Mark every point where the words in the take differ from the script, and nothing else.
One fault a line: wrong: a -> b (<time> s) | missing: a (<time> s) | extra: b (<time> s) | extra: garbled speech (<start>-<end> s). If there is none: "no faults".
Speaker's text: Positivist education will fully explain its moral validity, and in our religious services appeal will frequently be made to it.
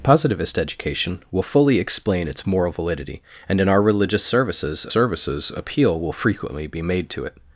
extra: services (4.9 s)